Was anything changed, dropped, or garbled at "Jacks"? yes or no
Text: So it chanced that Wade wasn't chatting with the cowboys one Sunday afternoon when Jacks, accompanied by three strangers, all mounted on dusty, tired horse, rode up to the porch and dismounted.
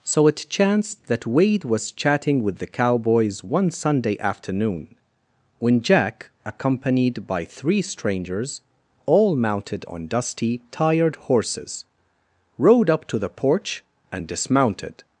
yes